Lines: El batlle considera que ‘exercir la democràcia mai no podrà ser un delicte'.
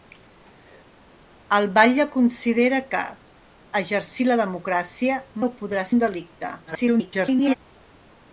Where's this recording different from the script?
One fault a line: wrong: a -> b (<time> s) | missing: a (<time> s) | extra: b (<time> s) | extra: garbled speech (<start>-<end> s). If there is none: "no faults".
missing: mai (5.2 s)
missing: ser (5.9 s)
extra: garbled speech (6.7-7.5 s)